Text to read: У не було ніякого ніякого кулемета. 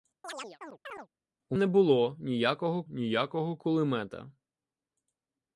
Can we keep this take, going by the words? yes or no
yes